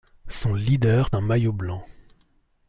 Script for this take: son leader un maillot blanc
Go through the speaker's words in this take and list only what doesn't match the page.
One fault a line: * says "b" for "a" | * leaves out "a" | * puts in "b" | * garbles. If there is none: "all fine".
all fine